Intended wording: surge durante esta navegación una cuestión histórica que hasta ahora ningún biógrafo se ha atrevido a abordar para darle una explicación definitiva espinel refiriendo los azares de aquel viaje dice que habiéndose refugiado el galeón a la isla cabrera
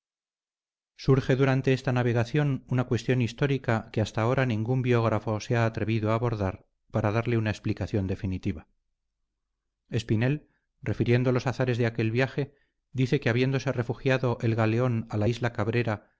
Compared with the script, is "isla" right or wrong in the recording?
right